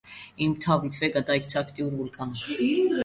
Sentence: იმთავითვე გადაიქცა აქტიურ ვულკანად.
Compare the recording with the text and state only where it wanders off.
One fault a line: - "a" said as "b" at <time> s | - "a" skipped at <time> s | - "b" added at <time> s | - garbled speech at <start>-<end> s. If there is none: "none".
none